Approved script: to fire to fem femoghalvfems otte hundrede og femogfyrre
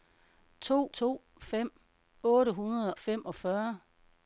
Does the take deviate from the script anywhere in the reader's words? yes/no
yes